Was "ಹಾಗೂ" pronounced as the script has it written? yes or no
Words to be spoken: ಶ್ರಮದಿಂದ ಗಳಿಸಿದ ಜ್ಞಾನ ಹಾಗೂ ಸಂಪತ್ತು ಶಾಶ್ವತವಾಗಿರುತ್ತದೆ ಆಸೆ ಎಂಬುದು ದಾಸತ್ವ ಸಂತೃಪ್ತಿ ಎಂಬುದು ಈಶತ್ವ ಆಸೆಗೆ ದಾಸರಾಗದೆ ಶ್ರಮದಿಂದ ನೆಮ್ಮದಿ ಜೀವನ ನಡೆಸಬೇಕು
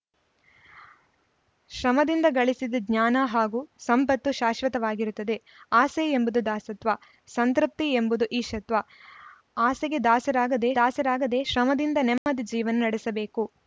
yes